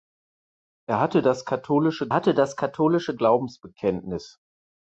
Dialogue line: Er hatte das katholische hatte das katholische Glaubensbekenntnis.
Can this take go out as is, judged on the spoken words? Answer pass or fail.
pass